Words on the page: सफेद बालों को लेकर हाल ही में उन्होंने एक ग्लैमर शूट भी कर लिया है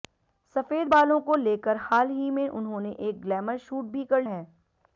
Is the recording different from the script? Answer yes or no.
yes